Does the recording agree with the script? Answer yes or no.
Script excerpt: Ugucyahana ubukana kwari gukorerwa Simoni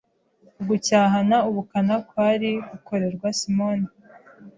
yes